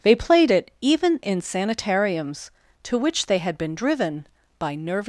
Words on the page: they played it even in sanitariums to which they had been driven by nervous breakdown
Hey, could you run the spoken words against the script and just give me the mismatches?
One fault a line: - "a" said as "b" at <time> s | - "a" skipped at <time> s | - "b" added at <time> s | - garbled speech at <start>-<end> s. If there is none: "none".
- "breakdown" skipped at 5.0 s